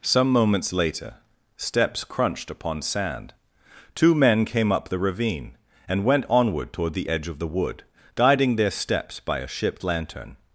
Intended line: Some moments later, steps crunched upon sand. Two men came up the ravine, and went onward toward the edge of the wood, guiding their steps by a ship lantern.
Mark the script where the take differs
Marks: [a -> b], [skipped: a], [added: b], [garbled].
Some moments later, steps crunched upon sand. Two men came up the ravine, and went onward toward the edge of the wood, guiding their steps by a ship lantern.